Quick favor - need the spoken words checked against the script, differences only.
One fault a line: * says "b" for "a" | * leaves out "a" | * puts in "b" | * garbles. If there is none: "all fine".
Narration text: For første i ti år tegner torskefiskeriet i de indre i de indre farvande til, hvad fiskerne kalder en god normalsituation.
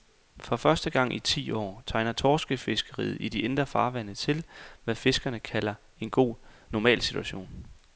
* puts in "gang"
* leaves out "i de indre"